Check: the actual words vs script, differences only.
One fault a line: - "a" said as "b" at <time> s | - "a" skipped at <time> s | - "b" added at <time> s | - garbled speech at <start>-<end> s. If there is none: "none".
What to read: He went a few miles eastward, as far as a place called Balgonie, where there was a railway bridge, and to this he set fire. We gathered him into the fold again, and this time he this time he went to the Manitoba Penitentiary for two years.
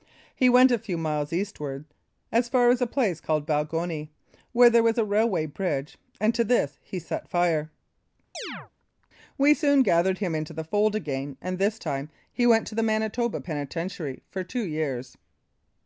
- "soon" added at 9.5 s
- "this time he" skipped at 12.4 s